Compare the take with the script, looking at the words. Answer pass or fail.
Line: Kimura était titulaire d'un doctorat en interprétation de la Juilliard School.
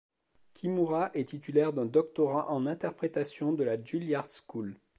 fail